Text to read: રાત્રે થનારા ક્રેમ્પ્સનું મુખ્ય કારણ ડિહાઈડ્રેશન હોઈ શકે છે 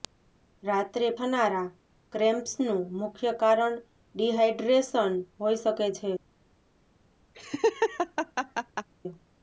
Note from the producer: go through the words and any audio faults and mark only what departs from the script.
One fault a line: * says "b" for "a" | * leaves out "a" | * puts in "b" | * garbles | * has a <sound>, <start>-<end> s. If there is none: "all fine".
* has a laugh, 7.3-8.9 s